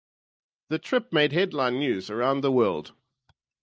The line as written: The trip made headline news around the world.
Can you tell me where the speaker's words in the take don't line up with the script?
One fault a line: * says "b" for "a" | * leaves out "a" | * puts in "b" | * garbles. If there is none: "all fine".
all fine